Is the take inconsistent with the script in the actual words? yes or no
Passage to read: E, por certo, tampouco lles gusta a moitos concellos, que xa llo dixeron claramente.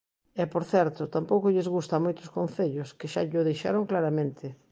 no